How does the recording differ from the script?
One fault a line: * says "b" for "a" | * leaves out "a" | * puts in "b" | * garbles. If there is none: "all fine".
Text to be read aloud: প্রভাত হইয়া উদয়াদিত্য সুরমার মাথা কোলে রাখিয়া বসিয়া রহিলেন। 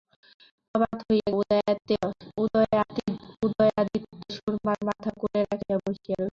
all fine